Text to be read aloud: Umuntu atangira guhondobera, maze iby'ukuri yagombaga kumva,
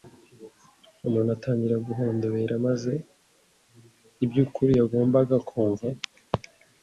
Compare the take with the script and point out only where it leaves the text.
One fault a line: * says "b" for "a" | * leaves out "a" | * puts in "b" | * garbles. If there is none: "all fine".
all fine